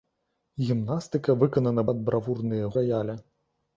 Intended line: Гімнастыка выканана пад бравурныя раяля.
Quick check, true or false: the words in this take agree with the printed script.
true